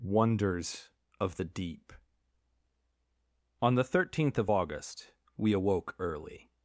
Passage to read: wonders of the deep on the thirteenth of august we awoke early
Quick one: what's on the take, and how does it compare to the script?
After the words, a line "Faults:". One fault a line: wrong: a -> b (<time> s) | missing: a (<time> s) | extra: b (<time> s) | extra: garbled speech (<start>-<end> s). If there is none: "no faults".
wonders of the deep on the thirteenth of august we awoke early
Faults:
no faults